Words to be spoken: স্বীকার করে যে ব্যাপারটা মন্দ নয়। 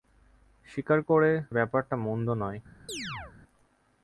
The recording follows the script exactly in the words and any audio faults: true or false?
false